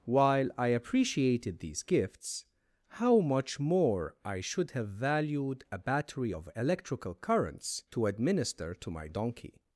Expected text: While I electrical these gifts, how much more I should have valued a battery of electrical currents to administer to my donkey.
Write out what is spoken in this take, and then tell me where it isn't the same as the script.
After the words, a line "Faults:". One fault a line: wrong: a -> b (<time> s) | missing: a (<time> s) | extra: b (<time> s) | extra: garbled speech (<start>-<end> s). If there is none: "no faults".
While I appreciated these gifts, how much more I should have valued a battery of electrical currents to administer to my donkey.
Faults:
wrong: electrical -> appreciated (0.7 s)